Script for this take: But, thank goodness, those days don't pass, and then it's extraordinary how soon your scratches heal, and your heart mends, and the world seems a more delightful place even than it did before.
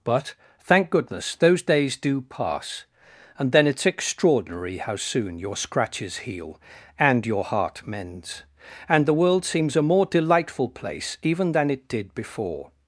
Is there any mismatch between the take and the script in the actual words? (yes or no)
yes